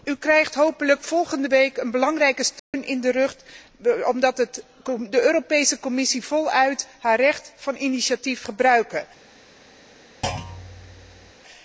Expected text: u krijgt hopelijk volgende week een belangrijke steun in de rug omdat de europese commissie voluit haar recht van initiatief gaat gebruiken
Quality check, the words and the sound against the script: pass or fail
fail